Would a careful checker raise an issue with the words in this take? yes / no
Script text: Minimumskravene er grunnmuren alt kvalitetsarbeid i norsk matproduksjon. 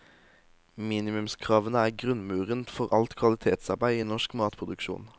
yes